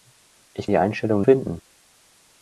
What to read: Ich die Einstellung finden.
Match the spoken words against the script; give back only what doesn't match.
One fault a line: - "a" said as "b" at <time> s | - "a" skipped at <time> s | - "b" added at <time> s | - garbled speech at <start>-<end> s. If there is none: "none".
none